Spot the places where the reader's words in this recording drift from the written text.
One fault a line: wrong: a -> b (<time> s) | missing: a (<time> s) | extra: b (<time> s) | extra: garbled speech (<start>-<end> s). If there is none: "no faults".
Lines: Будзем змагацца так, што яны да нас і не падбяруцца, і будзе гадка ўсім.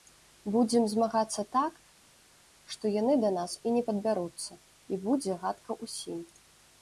no faults